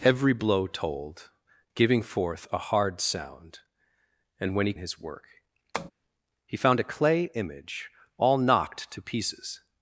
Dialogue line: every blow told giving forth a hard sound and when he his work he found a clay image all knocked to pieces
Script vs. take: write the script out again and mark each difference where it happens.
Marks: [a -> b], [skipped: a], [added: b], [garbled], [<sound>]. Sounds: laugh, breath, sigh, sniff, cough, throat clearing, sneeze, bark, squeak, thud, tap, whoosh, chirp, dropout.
every blow told giving forth a hard sound and when he his work [tap] he found a clay image all knocked to pieces